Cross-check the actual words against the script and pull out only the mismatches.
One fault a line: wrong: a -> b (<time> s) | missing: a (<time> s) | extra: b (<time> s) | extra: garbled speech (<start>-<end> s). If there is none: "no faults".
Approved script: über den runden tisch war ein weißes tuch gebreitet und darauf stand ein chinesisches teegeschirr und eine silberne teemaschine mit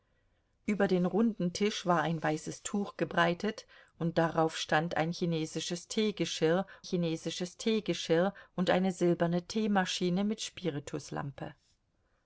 extra: chinesisches teegeschirr (6.8 s)